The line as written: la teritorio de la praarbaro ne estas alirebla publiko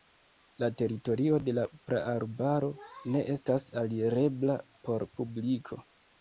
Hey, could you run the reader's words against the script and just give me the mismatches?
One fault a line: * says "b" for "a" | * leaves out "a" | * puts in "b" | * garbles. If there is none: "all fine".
* puts in "por"